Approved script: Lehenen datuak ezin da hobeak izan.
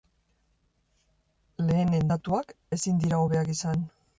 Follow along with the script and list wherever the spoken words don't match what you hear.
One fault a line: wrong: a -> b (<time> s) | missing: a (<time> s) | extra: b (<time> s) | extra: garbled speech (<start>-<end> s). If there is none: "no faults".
wrong: da -> dira (3.1 s)